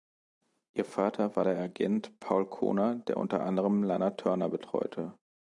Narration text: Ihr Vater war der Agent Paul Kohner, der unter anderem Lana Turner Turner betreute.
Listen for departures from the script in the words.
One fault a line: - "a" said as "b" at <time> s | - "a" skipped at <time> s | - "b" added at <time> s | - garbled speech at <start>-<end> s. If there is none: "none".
- "Turner" skipped at 4.5 s